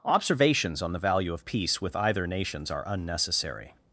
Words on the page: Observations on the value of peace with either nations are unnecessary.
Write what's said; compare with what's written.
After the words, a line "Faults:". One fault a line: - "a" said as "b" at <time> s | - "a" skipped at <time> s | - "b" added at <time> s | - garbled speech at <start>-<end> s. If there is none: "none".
Observations on the value of peace with either nations are unnecessary.
Faults:
none